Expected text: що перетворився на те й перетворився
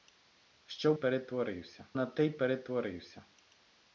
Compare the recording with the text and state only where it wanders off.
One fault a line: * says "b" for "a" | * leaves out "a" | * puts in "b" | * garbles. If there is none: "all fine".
all fine